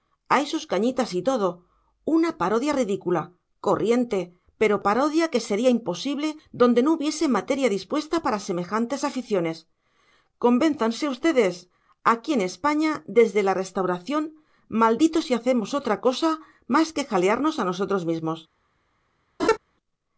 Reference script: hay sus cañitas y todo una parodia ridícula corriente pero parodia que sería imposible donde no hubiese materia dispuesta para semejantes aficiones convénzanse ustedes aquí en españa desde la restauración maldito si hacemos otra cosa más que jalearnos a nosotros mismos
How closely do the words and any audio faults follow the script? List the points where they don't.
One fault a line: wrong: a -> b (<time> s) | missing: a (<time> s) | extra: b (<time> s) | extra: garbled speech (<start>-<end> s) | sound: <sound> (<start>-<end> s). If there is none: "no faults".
sound: laugh (19.4-19.6 s)